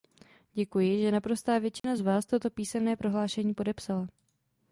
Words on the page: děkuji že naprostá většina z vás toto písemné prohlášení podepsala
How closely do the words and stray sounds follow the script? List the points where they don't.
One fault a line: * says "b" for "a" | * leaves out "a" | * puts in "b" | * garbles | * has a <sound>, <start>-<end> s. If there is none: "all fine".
* has a dropout, 1.8-1.8 s